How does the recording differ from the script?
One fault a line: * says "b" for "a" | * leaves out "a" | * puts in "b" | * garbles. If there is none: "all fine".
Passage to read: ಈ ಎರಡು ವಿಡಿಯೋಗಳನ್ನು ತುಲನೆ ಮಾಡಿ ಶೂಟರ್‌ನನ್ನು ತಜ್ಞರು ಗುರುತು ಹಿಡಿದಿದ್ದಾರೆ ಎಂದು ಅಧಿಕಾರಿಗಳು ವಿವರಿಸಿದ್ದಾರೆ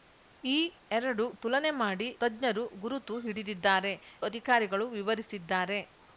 * leaves out "ವಿಡಿಯೋಗಳನ್ನು"
* leaves out "ಶೂಟರ್‌ನನ್ನು"
* leaves out "ಎಂದು"